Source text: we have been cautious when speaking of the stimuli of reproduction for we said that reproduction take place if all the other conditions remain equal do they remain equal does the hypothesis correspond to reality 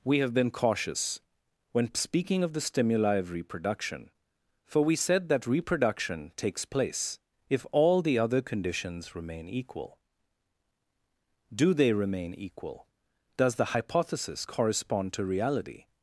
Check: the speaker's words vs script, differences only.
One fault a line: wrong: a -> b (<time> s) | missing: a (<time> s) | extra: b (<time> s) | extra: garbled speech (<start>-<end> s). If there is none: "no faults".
wrong: take -> takes (6.4 s)